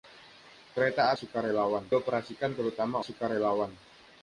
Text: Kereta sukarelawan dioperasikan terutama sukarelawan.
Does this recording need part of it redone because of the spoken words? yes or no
no